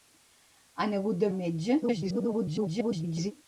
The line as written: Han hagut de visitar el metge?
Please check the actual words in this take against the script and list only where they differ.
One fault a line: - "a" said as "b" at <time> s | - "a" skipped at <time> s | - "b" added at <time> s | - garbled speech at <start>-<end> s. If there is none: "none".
- "visitar" skipped at 1.3 s
- garbled speech at 1.8-3.3 s